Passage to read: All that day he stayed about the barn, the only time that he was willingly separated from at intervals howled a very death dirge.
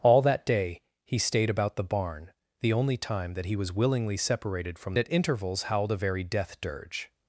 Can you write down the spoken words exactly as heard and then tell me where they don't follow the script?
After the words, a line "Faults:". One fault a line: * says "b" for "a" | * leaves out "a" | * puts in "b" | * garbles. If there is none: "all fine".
All that day he stayed about the barn, the only time that he was willingly separated from at intervals howled a very death dirge.
Faults:
all fine